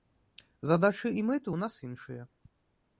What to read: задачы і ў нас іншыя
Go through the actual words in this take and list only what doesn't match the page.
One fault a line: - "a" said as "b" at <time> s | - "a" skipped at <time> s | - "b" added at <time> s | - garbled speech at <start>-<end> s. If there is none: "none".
- "мэты" added at 1.3 s